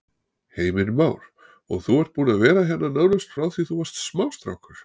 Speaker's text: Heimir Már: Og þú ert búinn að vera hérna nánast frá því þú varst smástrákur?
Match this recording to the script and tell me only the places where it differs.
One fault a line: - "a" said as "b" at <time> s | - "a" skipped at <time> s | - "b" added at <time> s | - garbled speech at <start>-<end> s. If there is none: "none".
none